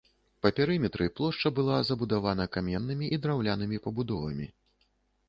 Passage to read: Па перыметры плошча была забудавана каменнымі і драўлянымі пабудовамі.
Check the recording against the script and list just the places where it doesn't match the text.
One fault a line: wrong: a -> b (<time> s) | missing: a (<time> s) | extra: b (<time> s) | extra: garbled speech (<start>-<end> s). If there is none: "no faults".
no faults